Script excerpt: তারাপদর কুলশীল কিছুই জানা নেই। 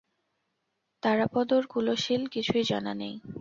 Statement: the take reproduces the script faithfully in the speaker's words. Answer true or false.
true